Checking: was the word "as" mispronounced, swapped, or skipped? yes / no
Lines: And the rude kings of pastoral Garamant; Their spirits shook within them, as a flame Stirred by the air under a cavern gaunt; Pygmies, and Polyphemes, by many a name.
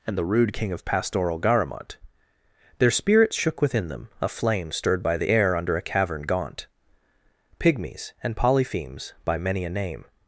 yes